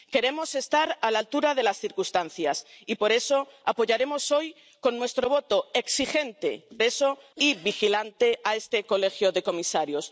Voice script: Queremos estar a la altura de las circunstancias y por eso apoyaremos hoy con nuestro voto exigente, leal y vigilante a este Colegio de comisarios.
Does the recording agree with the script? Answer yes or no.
no